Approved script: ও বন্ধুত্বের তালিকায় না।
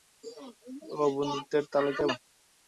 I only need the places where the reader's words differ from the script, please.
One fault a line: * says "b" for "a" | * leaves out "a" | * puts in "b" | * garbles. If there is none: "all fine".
all fine